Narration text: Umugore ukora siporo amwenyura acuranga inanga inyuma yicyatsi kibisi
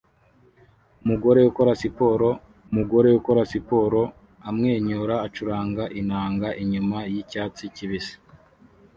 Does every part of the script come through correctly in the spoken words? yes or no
no